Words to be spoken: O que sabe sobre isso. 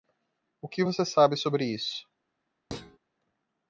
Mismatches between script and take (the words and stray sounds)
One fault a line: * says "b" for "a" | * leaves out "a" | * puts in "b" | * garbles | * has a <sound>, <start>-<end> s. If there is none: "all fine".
* puts in "você"
* has a thud, 2.7-3.0 s